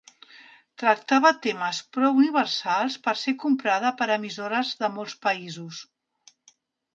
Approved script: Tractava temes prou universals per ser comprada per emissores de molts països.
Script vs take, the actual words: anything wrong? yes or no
no